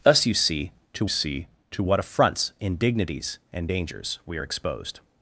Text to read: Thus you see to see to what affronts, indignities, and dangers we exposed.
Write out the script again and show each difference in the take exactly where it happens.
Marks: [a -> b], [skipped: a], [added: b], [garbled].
Thus you see to see to what affronts, indignities, and dangers we exposed.